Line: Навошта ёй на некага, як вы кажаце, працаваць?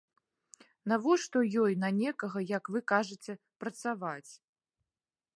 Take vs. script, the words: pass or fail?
pass